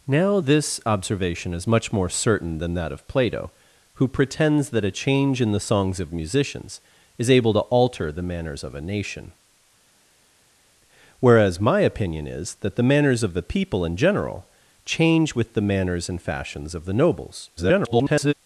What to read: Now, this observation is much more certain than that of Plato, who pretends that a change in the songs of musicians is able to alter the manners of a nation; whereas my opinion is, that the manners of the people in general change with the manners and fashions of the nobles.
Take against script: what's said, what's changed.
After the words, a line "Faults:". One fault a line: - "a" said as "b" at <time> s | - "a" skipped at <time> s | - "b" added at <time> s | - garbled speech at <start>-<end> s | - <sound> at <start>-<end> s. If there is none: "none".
Now, this observation is much more certain than that of Plato, who pretends that a change in the songs of musicians is able to alter the manners of a nation; whereas my opinion is, that the manners of the people in general change with the manners and fashions of the nobles. [garbled]
Faults:
- garbled speech at 17.6-18.3 s